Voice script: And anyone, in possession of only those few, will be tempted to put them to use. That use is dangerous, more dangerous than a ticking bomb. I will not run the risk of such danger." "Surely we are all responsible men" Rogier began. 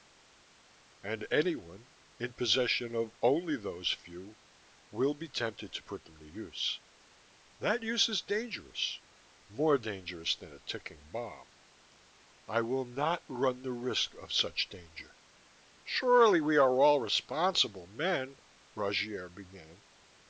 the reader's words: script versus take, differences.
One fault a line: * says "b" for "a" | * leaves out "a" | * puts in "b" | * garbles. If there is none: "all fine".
all fine